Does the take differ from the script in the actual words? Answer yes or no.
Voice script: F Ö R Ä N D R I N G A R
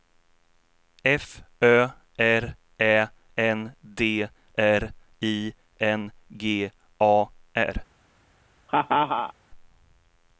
no